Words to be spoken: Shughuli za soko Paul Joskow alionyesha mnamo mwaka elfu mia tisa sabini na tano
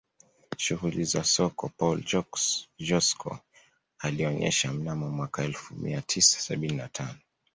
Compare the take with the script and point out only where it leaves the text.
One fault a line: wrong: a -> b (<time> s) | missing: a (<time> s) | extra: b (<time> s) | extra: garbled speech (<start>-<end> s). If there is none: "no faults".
no faults